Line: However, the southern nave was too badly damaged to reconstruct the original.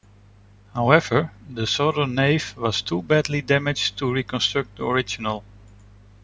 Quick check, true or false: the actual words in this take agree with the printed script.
true